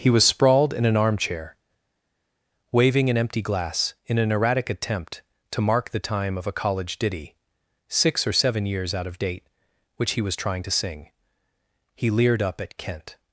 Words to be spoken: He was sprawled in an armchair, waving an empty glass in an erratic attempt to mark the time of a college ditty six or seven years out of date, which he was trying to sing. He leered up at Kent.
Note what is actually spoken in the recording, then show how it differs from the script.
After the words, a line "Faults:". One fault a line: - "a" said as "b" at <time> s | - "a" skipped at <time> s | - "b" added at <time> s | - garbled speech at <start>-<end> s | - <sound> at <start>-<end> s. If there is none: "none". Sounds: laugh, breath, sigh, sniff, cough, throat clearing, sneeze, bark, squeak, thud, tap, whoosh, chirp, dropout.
He was sprawled in an armchair, waving an empty glass in an erratic attempt to mark the time of a college ditty six or seven years out of date, which he was trying to sing. He leered up at Kent.
Faults:
none